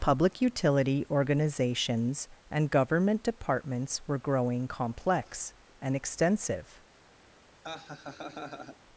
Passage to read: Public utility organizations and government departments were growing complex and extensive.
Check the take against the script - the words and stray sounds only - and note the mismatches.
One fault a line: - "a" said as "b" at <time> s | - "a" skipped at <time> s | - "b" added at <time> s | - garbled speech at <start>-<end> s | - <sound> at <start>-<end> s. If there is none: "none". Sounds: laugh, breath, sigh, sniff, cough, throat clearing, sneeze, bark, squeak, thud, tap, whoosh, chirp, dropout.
- laugh at 7.6-8.8 s